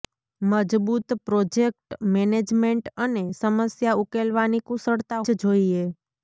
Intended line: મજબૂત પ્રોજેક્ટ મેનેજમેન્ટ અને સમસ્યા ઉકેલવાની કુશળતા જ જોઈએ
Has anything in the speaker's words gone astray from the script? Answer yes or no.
no